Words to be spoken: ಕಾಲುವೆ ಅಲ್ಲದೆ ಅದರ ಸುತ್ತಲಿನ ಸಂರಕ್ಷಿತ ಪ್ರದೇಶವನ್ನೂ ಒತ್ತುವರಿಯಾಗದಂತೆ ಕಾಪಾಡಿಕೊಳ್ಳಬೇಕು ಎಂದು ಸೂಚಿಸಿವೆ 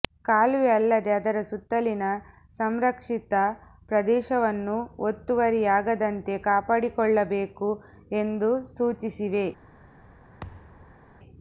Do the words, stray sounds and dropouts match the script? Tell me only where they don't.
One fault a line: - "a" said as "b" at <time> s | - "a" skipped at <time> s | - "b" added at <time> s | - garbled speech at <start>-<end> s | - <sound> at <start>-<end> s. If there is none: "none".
- thud at 10.4-11.0 s